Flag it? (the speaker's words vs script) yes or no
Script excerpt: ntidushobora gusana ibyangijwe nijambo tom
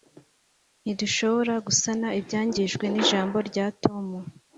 yes